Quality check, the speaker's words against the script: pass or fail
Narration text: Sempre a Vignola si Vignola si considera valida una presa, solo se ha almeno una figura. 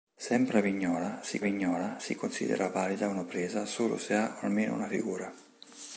pass